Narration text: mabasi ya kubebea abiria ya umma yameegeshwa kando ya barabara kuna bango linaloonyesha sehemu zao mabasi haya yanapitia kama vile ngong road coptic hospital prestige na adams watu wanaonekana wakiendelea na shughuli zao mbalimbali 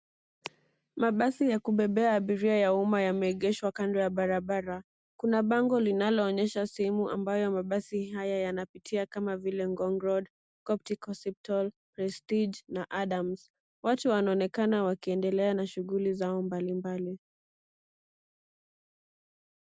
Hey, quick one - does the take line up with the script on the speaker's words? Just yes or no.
no